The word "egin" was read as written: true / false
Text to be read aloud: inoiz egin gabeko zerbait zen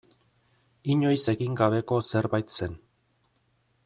true